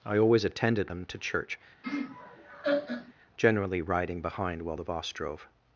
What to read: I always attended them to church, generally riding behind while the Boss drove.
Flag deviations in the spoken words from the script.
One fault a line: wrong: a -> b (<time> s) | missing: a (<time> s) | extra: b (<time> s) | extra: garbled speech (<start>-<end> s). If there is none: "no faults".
no faults